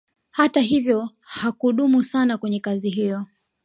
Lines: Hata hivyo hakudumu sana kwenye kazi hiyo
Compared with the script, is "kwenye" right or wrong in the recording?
right